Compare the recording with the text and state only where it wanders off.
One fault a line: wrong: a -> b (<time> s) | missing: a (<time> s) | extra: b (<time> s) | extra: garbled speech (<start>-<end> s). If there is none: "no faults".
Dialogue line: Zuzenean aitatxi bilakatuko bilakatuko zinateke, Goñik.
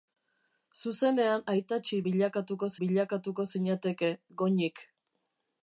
no faults